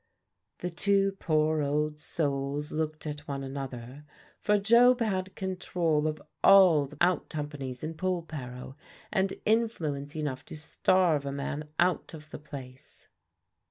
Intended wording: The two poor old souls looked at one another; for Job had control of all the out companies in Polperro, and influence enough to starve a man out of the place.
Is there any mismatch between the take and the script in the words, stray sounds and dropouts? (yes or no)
no